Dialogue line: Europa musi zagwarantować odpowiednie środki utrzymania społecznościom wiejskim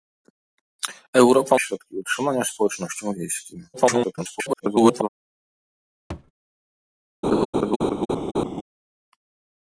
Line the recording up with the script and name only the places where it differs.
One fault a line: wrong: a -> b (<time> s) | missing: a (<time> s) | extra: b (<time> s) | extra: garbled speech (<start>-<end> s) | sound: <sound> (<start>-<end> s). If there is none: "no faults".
missing: musi zagwarantować odpowiednie (1.6 s)
extra: garbled speech (3.7-5.1 s)
sound: thud (6.1-6.3 s)
sound: laugh (7.2-8.6 s)